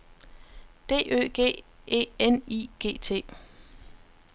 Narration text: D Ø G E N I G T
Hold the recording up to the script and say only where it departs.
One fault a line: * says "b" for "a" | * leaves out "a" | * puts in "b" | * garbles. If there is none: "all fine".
all fine